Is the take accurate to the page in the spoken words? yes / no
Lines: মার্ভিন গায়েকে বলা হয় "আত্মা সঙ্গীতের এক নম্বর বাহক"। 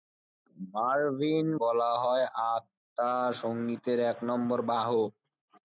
no